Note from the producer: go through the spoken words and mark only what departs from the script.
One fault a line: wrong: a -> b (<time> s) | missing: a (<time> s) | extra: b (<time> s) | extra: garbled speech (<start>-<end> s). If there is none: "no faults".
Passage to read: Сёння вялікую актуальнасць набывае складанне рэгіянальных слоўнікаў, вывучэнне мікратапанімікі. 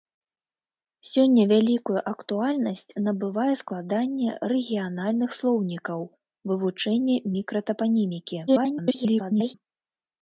extra: garbled speech (8.5-9.5 s)